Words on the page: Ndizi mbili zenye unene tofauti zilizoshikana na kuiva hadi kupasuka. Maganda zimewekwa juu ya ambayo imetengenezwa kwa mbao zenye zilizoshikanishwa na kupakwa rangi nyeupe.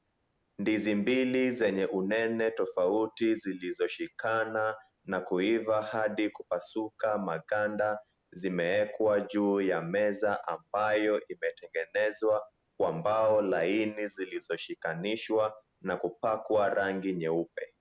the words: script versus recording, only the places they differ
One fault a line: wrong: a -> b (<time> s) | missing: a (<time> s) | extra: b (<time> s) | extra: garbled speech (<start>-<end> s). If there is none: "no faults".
extra: meza (9.8 s)
wrong: zenye -> laini (13.4 s)